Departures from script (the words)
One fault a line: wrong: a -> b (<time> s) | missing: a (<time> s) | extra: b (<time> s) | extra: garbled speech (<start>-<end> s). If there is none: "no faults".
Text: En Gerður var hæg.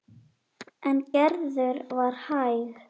no faults